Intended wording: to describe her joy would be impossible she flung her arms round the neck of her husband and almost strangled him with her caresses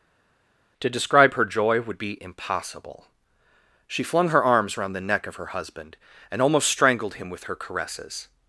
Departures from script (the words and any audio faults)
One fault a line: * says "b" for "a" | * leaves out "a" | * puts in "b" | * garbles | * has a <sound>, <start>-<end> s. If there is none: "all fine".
all fine